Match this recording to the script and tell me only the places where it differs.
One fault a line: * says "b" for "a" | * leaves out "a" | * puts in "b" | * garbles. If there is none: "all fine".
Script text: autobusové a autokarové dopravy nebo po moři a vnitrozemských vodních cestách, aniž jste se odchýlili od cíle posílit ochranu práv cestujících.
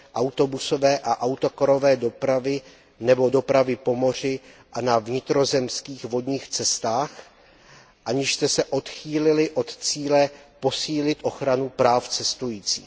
* puts in "dopravy"
* puts in "na"